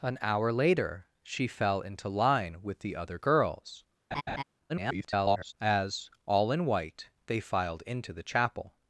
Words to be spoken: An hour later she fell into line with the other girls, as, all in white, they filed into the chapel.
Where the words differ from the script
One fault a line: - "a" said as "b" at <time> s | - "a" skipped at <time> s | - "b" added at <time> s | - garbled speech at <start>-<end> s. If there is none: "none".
- garbled speech at 4.7-5.5 s